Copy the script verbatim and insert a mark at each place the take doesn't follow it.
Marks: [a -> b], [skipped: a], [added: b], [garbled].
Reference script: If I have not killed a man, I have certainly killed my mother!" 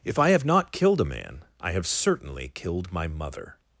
If I have not killed a man, I have certainly killed my mother!"